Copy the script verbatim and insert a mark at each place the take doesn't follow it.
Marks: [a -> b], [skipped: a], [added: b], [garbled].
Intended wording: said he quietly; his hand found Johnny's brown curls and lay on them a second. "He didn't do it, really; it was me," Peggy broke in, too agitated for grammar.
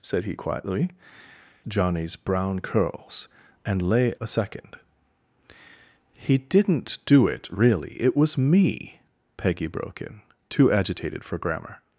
said he quietly; [skipped: his hand found] Johnny's brown curls and lay [skipped: on them] a second. "He didn't do it, really; it was me," Peggy broke in, too agitated for grammar.